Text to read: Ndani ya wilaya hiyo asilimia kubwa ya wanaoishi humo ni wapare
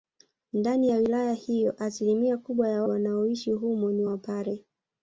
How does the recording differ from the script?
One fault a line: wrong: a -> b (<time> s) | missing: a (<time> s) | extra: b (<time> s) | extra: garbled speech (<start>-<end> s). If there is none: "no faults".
no faults